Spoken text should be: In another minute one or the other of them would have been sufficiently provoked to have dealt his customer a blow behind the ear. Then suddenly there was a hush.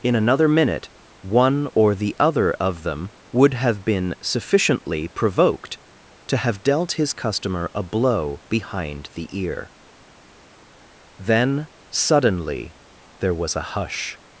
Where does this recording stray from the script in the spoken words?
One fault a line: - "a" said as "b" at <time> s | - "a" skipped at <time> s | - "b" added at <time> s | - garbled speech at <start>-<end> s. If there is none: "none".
none